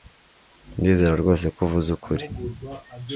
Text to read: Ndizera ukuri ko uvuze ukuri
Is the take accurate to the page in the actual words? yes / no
no